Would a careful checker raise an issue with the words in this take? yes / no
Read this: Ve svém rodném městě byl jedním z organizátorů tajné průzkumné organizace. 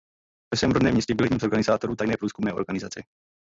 no